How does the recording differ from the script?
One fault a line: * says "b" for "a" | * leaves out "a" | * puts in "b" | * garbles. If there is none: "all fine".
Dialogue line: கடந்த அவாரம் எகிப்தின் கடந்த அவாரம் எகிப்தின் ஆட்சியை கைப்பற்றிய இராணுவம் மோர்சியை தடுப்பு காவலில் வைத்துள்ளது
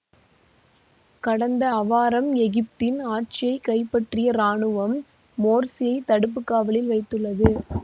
* leaves out "கடந்த அவாரம் எகிப்தின்"